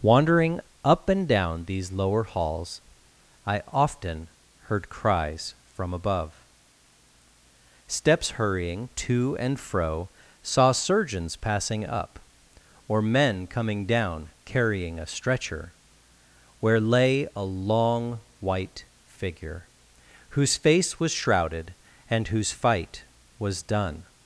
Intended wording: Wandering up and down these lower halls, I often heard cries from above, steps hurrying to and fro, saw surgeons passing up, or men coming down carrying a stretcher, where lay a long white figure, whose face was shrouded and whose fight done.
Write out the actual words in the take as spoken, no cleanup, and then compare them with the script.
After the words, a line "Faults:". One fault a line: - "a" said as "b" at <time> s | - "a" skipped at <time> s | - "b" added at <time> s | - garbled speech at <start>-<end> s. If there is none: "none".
Wandering up and down these lower halls, I often heard cries from above, steps hurrying to and fro, saw surgeons passing up, or men coming down carrying a stretcher, where lay a long white figure, whose face was shrouded and whose fight was done.
Faults:
- "was" added at 23.4 s